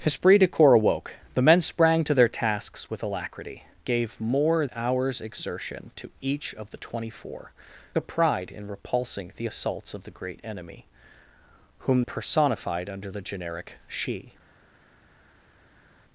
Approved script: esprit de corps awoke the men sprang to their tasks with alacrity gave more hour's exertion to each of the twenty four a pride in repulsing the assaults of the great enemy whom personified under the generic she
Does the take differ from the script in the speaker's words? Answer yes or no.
no